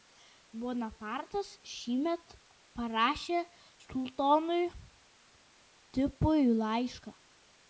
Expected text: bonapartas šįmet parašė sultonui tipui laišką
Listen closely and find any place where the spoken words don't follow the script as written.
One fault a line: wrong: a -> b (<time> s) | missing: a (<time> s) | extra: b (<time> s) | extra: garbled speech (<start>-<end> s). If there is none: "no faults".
no faults